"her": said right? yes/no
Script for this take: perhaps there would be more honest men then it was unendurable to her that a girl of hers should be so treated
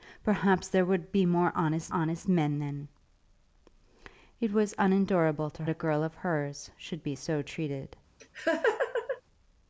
no